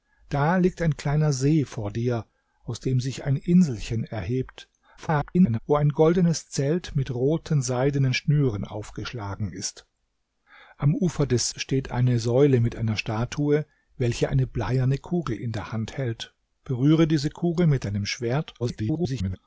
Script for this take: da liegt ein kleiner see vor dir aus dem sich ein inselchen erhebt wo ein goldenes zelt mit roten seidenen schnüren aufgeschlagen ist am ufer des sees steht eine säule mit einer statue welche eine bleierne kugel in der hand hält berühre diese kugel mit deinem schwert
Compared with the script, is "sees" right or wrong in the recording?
wrong